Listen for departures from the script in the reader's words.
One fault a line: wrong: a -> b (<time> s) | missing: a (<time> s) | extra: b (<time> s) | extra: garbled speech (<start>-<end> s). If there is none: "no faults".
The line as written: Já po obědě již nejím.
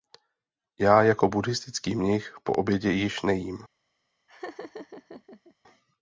extra: jako buddhistický mnich (1.0 s)